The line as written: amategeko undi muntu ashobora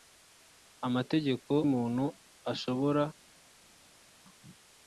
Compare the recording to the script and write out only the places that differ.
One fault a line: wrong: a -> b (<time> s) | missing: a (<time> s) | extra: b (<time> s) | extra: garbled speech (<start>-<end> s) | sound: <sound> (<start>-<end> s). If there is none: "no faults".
missing: undi (1.5 s)